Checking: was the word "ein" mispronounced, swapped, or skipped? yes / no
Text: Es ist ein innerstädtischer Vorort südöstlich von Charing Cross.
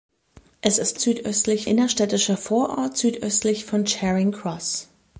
yes